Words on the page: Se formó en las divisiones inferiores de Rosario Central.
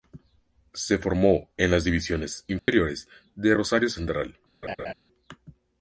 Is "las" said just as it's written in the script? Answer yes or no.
yes